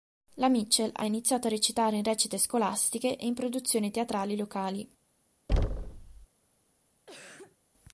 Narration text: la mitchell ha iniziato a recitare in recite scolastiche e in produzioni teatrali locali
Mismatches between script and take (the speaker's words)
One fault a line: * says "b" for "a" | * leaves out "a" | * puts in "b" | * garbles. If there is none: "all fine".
all fine